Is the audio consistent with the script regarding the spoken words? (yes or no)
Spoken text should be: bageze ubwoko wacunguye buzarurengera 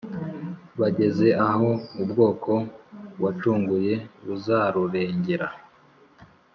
no